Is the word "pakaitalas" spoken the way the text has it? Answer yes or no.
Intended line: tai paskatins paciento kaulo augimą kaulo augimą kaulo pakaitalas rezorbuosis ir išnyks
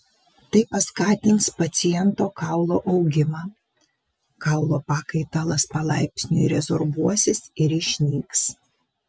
no